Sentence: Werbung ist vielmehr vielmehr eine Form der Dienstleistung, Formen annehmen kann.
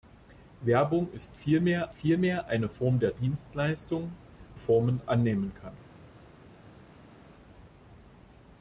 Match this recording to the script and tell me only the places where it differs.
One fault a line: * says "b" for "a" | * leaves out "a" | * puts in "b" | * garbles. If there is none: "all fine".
all fine